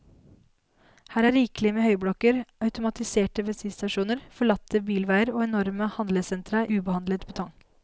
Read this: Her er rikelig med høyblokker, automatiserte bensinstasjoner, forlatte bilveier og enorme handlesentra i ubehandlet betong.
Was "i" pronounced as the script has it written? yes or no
no